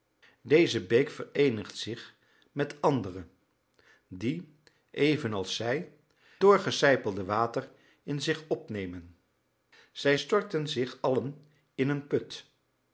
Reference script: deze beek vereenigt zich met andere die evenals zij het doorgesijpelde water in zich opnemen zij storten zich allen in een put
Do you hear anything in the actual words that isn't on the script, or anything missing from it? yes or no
yes